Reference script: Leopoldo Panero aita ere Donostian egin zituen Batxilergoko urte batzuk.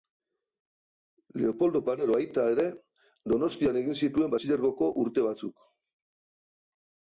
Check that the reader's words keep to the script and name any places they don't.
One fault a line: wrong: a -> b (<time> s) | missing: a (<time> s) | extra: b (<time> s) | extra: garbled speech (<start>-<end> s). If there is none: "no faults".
no faults